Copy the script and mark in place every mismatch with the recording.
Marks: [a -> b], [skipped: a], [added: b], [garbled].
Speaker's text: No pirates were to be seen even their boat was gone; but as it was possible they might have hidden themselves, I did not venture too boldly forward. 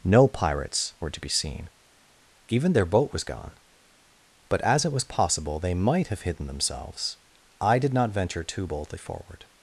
No pirates were to be seen even their boat was gone; but as it was possible they might have hidden themselves, I did not venture too boldly forward.